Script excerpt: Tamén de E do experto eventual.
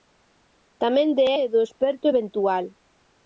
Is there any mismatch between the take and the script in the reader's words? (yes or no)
no